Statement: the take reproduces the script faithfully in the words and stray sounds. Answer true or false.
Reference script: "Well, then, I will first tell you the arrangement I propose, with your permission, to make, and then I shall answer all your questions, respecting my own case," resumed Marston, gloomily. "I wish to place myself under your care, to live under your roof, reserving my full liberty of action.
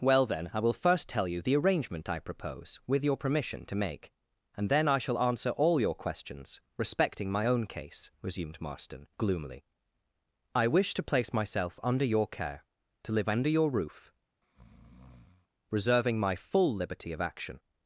false